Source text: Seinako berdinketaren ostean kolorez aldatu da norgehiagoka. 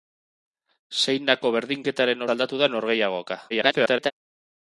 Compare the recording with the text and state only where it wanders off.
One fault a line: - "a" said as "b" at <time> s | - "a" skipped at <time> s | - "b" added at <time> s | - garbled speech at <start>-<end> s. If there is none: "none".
- "ostean kolorez" skipped at 2.3 s
- garbled speech at 3.5-4.1 s